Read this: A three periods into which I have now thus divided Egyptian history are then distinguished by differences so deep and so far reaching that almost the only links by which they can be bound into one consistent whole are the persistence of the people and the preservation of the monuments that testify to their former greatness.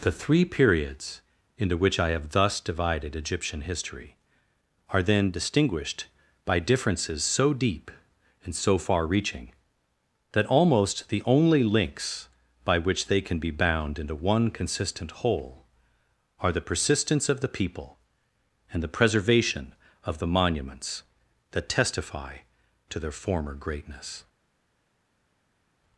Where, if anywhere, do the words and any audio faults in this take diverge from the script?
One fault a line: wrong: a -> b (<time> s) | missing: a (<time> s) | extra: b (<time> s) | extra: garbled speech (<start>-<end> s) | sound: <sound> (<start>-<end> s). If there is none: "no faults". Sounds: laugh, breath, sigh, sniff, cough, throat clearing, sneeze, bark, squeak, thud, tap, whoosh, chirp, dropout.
wrong: A -> The (0.0 s)
missing: now (2.3 s)